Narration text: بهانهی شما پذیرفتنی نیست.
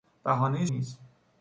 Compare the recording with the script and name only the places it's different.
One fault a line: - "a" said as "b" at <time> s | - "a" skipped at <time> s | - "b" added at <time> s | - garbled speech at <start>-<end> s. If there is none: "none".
- "شما پذیرفتنی" skipped at 0.7 s